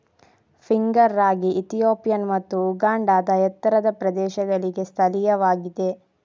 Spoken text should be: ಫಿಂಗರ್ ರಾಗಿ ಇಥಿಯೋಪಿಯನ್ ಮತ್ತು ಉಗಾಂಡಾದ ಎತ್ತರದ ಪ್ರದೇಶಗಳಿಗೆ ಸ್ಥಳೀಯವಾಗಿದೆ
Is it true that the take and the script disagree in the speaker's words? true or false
false